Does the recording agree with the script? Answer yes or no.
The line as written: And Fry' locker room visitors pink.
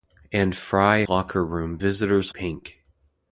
yes